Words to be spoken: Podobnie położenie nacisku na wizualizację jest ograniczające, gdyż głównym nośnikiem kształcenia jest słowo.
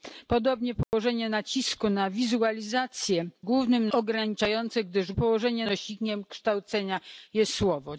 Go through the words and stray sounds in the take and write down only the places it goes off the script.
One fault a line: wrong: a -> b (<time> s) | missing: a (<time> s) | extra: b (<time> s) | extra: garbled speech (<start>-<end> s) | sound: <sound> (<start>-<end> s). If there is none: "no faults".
sound: dropout (0.8-0.9 s)
wrong: jest -> głównym (3.4 s)
wrong: głównym -> położenie (5.1 s)